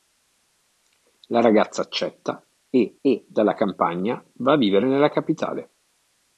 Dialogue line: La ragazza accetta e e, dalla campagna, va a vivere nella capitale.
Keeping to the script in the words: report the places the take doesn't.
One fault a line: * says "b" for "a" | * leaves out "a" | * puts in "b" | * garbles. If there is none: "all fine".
all fine